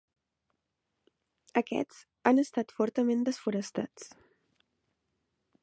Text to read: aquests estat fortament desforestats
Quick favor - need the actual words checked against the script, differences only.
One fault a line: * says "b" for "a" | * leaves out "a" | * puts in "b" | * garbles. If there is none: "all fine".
* puts in "han"